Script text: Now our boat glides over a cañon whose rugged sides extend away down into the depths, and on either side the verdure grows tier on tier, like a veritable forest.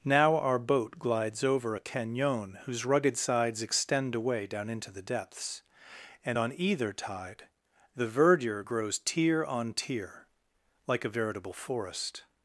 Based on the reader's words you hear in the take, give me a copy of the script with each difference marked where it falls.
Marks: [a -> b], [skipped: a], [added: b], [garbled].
Now our boat glides over a cañon whose rugged sides extend away down into the depths, and on either [side -> tide] the verdure grows tier on tier, like a veritable forest.